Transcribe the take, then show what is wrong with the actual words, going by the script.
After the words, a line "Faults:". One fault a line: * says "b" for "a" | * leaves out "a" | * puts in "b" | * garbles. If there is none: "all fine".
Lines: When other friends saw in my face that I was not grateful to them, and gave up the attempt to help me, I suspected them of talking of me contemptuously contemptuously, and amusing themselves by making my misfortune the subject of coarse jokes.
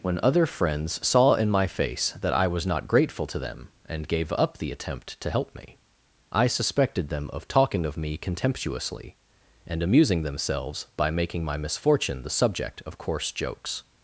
When other friends saw in my face that I was not grateful to them, and gave up the attempt to help me, I suspected them of talking of me contemptuously, and amusing themselves by making my misfortune the subject of coarse jokes.
Faults:
* leaves out "contemptuously"